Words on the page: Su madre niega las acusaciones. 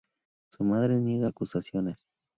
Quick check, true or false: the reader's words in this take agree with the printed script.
false